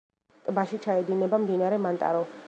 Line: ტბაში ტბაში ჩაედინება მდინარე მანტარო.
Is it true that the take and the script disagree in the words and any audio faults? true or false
true